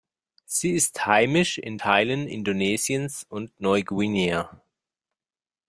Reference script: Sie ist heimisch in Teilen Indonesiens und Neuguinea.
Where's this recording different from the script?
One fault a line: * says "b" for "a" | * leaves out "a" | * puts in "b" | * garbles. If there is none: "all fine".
all fine